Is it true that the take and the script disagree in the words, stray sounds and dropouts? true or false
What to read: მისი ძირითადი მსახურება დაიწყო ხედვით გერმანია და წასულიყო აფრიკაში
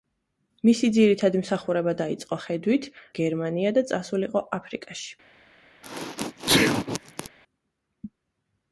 true